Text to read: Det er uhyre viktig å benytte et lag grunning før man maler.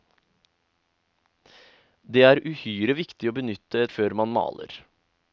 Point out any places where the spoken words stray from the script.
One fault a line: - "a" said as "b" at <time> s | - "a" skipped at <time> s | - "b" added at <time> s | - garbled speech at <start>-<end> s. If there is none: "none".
- "et lag grunning" skipped at 3.9 s